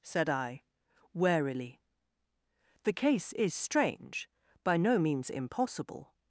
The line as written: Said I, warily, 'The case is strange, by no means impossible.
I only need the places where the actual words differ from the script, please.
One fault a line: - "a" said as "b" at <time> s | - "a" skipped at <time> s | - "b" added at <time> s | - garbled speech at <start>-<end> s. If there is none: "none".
none